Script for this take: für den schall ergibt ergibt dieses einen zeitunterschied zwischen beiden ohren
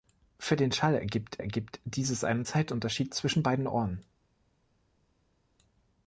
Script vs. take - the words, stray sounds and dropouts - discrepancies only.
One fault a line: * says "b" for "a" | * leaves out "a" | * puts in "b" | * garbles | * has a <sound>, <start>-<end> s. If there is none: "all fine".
all fine